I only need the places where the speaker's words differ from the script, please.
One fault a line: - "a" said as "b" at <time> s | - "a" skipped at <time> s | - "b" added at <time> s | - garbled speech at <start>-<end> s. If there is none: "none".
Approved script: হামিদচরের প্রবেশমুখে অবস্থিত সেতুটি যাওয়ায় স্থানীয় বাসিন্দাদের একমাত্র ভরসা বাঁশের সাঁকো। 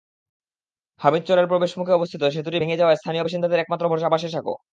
- "ভেঙে" added at 2.6 s